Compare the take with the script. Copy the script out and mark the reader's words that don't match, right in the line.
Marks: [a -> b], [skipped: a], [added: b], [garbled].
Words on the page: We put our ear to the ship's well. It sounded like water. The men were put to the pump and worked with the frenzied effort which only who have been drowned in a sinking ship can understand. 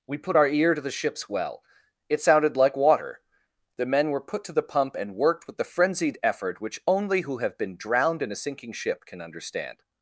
We put our ear to the ship's well. It sounded like water. The men were put to the pump and worked with the frenzied effort which only who have been drowned in a sinking ship can understand.